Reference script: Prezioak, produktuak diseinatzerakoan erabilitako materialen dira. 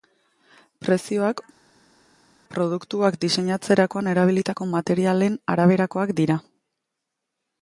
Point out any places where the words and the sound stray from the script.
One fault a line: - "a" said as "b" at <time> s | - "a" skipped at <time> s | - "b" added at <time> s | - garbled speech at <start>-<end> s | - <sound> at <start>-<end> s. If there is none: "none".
- "araberakoak" added at 5.6 s